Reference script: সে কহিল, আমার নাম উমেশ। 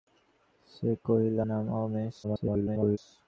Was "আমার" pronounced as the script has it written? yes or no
no